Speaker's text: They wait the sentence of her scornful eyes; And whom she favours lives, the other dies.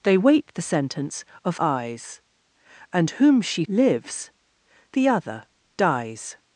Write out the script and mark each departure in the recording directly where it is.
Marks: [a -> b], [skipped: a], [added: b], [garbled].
They wait the sentence of [skipped: her scornful] eyes; And whom she [skipped: favours] lives, the other dies.